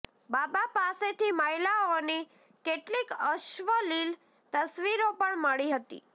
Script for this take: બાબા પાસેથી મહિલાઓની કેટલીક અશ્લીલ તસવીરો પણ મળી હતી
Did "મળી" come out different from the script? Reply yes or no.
no